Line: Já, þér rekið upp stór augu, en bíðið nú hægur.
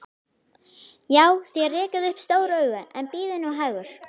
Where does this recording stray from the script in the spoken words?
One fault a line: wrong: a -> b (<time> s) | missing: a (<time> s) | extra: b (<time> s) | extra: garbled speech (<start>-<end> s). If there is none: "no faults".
no faults